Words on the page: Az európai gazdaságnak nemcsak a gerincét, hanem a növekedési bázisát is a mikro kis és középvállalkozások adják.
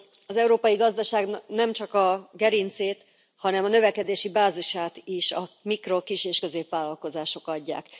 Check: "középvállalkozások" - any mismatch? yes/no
no